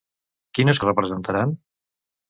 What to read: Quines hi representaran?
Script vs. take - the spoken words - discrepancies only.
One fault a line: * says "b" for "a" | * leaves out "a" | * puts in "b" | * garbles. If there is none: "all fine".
all fine